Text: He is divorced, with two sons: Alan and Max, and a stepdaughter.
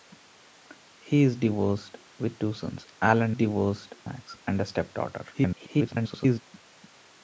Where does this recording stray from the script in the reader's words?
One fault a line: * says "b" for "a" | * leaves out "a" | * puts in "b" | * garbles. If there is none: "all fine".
* says "divorced" for "and"
* garbles